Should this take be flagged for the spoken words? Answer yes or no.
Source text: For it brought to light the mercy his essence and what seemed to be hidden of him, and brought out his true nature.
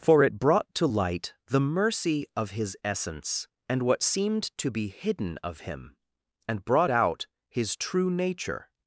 yes